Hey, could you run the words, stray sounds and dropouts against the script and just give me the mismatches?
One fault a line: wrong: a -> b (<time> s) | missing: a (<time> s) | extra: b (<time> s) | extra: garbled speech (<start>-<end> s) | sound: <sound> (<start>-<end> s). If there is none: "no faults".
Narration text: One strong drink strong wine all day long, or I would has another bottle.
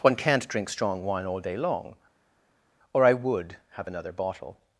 wrong: strong -> can't (0.1 s)
wrong: has -> have (3.7 s)